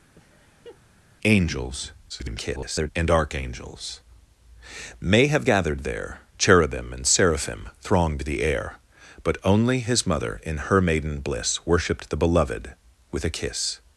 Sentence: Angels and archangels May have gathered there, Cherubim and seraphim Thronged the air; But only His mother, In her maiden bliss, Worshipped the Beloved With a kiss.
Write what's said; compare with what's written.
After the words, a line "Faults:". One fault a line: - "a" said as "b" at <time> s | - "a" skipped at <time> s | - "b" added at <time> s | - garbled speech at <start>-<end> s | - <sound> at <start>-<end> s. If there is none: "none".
Angels [garbled] and archangels May have gathered there, Cherubim and seraphim Thronged the air; But only His mother, In her maiden bliss, Worshipped the Beloved With a kiss.
Faults:
- laugh at 0.1-0.8 s
- garbled speech at 2.1-2.9 s